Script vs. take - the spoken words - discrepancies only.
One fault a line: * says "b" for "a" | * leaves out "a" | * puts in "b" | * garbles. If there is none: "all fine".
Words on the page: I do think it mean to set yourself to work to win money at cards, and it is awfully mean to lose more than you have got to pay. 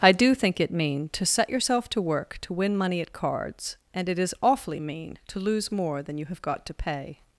all fine